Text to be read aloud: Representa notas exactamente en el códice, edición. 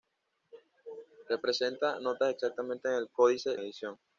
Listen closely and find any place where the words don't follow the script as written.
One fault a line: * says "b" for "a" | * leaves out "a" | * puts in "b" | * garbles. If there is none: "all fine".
all fine